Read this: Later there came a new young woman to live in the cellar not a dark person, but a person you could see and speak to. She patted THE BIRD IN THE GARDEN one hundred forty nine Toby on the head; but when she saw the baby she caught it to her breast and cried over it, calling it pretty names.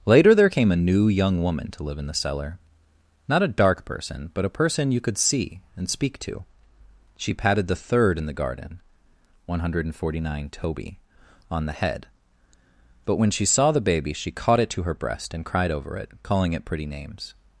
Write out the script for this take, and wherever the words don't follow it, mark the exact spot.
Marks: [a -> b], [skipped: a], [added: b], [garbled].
Later there came a new young woman to live in the cellar not a dark person, but a person you could see and speak to. She patted THE [BIRD -> Third] IN THE GARDEN one hundred forty nine Toby on the head; but when she saw the baby she caught it to her breast and cried over it, calling it pretty names.